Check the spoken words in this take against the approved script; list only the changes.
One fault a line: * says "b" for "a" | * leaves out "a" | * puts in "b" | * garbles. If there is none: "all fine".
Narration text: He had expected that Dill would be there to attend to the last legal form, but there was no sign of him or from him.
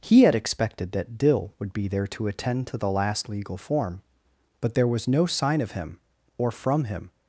all fine